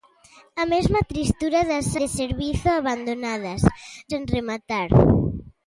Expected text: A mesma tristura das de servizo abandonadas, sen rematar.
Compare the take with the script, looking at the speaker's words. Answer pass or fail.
pass